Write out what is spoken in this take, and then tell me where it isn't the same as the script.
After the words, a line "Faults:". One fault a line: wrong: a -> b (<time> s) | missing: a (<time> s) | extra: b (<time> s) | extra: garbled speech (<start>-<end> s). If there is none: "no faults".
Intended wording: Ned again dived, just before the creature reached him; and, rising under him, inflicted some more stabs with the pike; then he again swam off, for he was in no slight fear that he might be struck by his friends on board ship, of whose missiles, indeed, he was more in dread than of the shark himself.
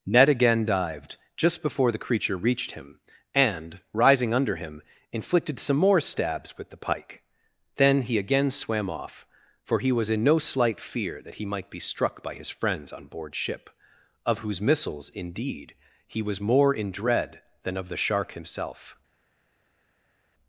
Ned again dived, just before the creature reached him; and, rising under him, inflicted some more stabs with the pike; then he again swam off, for he was in no slight fear that he might be struck by his friends on board ship, of whose missiles, indeed, he was more in dread than of the shark himself.
Faults:
no faults